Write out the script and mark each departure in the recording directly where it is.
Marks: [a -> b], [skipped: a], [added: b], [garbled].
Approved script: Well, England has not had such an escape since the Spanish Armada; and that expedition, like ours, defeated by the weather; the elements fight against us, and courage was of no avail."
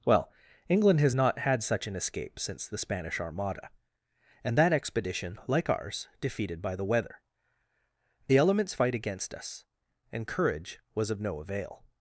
Well, England has not had such an escape since the Spanish Armada; and that expedition, like ours, defeated by the weather; the elements fight against us, and courage was of no avail."